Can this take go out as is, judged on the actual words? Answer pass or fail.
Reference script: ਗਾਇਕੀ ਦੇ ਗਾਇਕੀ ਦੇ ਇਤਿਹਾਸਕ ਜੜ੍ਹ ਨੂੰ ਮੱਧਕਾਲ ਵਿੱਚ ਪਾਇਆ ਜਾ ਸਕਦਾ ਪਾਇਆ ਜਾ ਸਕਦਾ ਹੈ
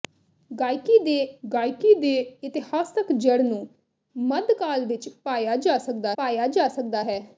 pass